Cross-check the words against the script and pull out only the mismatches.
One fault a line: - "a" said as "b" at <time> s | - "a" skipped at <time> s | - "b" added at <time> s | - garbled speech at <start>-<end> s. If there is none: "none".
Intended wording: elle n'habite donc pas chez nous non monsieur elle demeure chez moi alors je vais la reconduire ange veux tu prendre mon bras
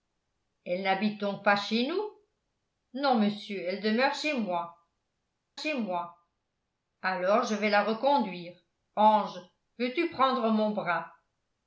- "chez moi" added at 5.6 s